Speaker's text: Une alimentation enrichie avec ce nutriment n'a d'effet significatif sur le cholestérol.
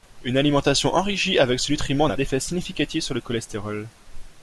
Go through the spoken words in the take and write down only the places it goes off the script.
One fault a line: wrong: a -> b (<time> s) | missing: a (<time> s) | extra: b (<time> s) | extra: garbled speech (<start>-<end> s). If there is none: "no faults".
no faults